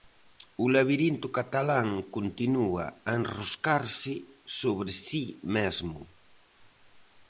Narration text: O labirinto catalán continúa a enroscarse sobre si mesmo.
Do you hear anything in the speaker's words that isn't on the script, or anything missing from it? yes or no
no